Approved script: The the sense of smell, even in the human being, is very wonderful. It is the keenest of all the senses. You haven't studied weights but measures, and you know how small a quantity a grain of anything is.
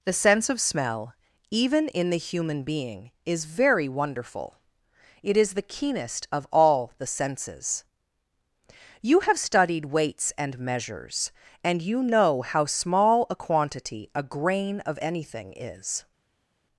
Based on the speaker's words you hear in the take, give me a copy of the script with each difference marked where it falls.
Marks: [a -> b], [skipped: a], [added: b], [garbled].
The [skipped: the] sense of smell, even in the human being, is very wonderful. It is the keenest of all the senses. You [haven't -> have] studied weights [but -> and] measures, and you know how small a quantity a grain of anything is.